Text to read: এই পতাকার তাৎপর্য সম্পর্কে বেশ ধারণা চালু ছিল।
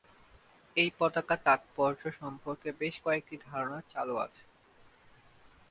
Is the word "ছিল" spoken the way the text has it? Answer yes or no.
no